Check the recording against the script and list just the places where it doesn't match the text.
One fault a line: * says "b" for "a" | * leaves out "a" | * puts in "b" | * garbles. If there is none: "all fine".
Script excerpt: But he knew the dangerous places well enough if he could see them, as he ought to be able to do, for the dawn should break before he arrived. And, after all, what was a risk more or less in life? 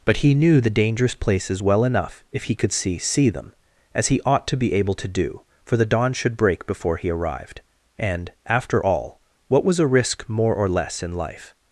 * puts in "see"